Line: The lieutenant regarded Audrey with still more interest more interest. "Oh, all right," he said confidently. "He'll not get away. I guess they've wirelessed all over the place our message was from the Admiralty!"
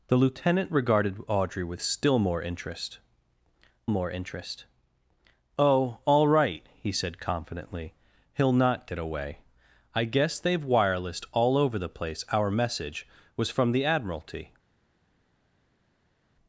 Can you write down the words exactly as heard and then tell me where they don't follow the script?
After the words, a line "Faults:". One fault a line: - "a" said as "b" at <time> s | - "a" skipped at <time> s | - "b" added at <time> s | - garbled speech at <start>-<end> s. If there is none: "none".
The lieutenant regarded Audrey with still more interest more interest. "Oh, all right," he said confidently. "He'll not get away. I guess they've wirelessed all over the place our message was from the Admiralty!"
Faults:
none